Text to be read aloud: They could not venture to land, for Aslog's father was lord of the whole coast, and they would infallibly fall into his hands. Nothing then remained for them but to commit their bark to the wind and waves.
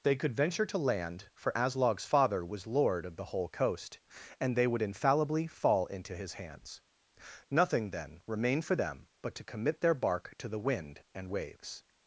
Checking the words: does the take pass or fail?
fail